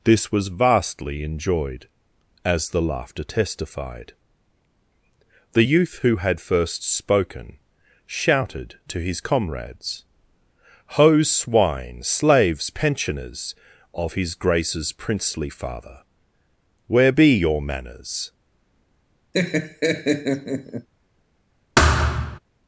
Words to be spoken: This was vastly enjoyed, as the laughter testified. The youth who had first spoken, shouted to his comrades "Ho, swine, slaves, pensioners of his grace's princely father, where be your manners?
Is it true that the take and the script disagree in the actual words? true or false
false